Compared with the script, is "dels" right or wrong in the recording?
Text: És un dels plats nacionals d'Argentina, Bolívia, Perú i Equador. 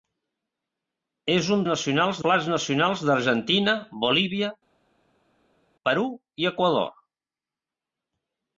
wrong